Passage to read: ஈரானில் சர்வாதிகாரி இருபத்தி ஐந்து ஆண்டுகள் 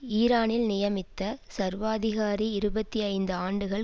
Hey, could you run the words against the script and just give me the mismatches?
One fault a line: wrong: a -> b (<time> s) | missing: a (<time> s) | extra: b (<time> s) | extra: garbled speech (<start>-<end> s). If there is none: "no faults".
extra: நியமித்த (0.7 s)